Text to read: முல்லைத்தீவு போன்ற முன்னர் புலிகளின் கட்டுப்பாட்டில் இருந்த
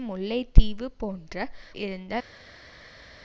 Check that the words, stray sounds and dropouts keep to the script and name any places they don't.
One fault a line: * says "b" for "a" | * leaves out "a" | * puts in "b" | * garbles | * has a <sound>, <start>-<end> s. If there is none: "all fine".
* leaves out "முன்னர் புலிகளின் கட்டுப்பாட்டில்"